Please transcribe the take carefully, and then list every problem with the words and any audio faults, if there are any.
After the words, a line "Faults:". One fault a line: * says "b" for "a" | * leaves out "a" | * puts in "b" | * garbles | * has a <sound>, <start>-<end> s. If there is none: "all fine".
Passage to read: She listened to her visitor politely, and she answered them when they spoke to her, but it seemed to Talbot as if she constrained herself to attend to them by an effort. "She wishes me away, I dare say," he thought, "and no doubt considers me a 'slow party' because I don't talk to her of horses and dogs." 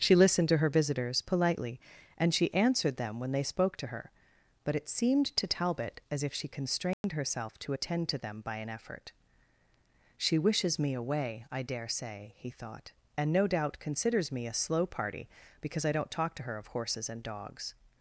She listened to her visitors politely, and she answered them when they spoke to her, but it seemed to Talbot as if she constrained herself to attend to them by an effort. "She wishes me away, I dare say," he thought, "and no doubt considers me a 'slow party' because I don't talk to her of horses and dogs."
Faults:
* says "visitors" for "visitor"
* has a dropout, 6.9-7.0 s